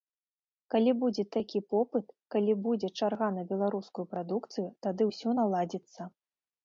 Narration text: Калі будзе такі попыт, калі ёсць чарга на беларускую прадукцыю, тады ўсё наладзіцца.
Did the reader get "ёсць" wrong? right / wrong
wrong